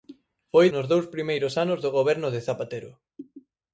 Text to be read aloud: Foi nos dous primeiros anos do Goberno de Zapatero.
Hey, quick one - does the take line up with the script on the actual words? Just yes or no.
yes